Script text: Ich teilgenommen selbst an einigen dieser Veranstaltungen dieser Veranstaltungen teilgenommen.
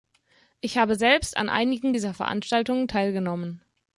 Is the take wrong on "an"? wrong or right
right